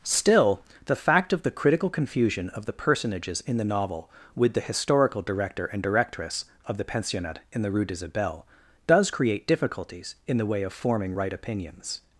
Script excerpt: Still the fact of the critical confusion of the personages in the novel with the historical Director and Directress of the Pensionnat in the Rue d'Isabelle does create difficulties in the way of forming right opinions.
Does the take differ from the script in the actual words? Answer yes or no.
no